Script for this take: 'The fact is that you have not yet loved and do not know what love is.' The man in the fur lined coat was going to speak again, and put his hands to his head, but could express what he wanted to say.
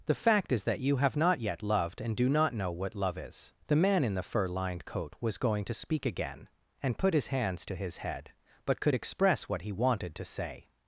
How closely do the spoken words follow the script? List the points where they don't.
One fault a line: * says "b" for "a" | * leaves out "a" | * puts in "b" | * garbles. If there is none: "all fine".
all fine